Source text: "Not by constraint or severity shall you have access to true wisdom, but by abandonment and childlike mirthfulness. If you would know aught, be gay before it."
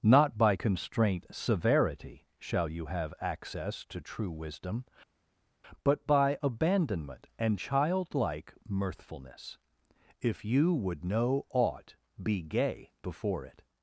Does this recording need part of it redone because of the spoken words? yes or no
yes